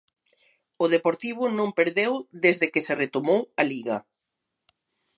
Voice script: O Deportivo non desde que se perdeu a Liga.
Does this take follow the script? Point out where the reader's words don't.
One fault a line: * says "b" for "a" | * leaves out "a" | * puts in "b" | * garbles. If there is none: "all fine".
* puts in "perdeu"
* says "retomou" for "perdeu"